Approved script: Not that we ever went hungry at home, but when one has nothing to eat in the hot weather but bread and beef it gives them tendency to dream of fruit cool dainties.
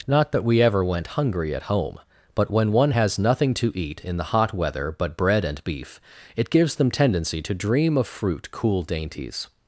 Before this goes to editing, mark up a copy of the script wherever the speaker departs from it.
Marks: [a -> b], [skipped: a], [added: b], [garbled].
Not that we ever went hungry at home, but when one has nothing to eat in the hot weather but bread and beef it gives them tendency to dream of fruit cool dainties.